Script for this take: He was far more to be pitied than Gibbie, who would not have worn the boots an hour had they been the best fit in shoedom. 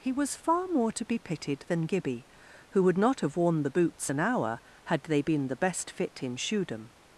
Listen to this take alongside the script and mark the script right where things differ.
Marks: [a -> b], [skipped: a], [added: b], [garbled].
He was far more to be pitied than Gibbie, who would not have worn the boots an hour had they been the best fit in shoedom.